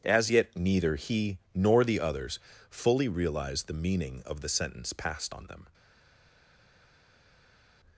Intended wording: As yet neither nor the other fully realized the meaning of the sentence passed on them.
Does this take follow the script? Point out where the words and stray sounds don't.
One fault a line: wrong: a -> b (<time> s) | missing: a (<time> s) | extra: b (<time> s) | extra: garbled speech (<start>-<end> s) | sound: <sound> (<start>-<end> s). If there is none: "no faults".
extra: he (1.0 s)
wrong: other -> others (2.0 s)